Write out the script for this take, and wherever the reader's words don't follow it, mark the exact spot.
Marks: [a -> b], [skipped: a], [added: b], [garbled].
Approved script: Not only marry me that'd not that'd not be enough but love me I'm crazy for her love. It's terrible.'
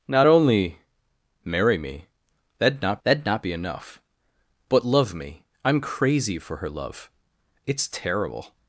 Not only marry me that'd not that'd not be enough but love me I'm crazy for her love. It's terrible.'